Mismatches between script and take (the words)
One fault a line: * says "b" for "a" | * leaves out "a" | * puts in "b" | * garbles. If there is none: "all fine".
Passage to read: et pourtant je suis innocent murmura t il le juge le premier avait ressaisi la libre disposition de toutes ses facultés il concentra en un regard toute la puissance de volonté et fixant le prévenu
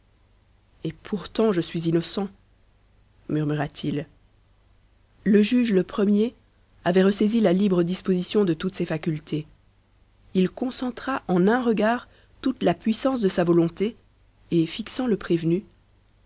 * puts in "sa"